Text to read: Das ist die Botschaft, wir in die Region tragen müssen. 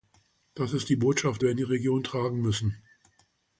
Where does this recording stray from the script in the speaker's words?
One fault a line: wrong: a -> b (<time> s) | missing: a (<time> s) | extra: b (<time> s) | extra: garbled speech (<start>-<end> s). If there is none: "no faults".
no faults